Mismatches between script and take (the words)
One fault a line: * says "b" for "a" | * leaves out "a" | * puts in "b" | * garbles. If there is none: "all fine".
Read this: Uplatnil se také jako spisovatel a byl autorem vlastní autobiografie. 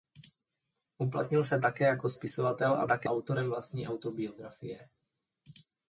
* says "také" for "byl"